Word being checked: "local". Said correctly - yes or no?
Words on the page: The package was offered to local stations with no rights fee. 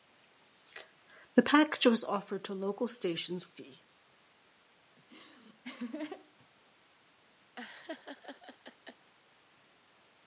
yes